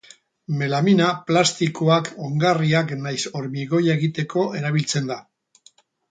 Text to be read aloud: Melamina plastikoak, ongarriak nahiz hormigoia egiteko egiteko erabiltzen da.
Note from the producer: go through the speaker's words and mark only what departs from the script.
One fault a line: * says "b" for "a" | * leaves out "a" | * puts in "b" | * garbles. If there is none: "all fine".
* leaves out "egiteko"